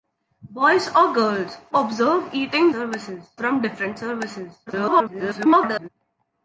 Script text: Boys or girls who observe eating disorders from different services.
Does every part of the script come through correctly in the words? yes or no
no